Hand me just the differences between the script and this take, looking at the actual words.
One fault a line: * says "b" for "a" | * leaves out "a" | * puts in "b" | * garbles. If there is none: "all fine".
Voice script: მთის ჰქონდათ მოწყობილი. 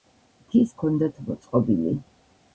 all fine